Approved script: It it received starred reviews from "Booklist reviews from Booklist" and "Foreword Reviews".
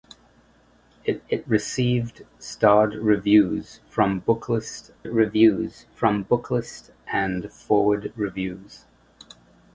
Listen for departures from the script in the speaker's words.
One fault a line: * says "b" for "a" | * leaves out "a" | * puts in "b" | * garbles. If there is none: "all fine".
all fine